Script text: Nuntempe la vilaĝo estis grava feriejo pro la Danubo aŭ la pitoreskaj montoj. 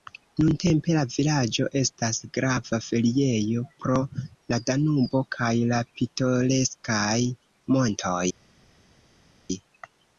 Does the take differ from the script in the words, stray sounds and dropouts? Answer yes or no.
yes